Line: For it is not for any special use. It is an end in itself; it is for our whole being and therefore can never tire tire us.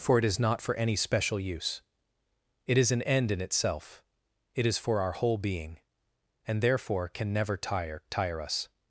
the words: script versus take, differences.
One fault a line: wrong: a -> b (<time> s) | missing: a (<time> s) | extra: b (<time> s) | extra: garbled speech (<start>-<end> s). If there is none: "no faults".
no faults